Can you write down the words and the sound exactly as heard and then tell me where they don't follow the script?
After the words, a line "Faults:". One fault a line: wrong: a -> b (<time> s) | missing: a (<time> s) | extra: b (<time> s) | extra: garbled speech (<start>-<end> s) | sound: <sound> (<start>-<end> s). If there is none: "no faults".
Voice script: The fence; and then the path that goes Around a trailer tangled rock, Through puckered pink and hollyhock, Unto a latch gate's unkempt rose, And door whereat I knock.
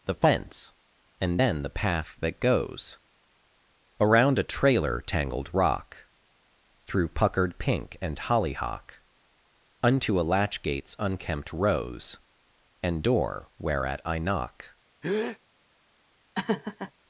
The fence; and then the path that goes Around a trailer tangled rock, Through puckered pink and hollyhock, Unto a latch gate's unkempt rose, And door whereat I knock.
Faults:
sound: breath (15.0-15.4 s)
sound: laugh (16.3-16.9 s)